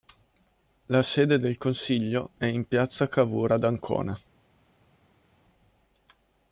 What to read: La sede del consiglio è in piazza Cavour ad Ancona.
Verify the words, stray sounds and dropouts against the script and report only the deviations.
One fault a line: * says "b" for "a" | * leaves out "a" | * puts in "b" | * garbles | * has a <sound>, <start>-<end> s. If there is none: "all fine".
all fine